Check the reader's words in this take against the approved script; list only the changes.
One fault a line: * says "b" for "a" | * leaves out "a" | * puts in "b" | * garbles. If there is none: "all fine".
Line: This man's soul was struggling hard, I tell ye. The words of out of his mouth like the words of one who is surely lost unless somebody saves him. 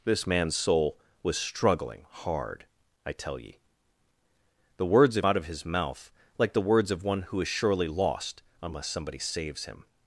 all fine